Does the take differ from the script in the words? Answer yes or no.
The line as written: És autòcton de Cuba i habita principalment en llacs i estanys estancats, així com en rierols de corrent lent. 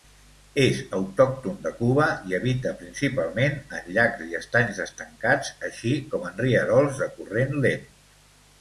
no